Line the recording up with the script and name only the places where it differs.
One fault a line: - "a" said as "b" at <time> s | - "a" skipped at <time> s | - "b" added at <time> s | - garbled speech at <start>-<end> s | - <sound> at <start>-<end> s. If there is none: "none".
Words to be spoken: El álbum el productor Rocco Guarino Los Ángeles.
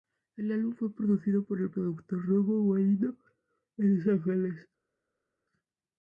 - "fue producido por" added at 0.7 s
- "en" added at 3.8 s